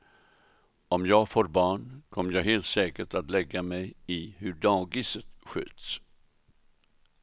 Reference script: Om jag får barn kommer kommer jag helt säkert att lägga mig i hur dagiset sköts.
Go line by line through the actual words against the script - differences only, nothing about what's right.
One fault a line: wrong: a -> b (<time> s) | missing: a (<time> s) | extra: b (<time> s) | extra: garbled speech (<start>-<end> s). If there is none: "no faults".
missing: kommer (2.3 s)